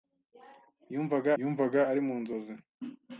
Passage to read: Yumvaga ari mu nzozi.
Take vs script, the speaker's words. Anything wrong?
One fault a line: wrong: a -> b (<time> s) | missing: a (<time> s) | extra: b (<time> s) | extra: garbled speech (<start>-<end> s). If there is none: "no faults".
extra: yumvaga (1.4 s)